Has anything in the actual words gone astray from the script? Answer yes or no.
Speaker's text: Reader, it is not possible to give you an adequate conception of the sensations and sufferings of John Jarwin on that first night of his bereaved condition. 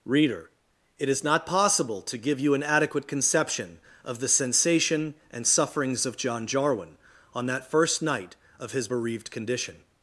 yes